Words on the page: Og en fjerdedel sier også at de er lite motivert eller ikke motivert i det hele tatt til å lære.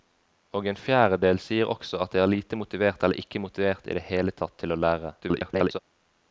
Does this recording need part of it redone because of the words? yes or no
yes